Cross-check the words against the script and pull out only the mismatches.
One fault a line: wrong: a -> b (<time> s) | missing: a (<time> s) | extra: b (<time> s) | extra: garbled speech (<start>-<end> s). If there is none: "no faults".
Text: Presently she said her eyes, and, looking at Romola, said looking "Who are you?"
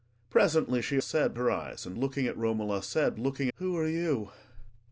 no faults